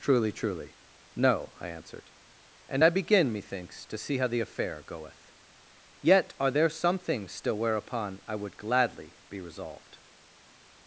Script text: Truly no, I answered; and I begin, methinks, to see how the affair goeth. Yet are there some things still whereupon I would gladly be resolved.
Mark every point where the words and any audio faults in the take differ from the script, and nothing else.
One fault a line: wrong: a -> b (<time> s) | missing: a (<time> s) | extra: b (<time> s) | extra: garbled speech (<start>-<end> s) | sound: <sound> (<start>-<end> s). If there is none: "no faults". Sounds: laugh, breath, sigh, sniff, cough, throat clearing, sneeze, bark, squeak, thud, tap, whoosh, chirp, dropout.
extra: truly (0.3 s)